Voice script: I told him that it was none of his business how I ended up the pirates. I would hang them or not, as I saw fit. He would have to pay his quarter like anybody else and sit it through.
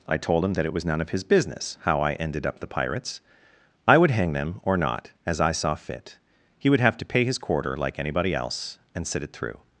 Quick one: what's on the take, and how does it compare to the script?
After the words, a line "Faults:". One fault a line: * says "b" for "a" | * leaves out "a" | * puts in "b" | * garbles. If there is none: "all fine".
I told him that it was none of his business how I ended up the pirates. I would hang them or not, as I saw fit. He would have to pay his quarter like anybody else and sit it through.
Faults:
all fine